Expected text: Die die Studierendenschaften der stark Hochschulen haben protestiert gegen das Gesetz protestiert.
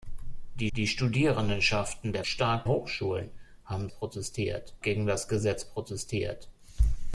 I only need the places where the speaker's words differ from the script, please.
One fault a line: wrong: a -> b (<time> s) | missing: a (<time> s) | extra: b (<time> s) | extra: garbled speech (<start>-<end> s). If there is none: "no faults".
no faults